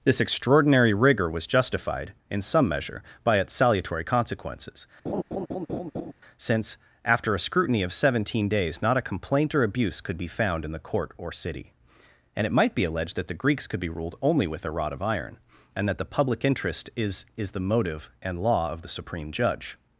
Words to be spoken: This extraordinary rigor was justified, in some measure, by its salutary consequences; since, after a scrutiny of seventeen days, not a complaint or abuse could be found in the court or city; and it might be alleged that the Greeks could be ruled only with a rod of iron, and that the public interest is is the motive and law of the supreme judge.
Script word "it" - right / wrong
right